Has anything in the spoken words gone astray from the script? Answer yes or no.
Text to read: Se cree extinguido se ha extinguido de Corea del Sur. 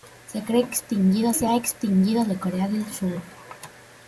no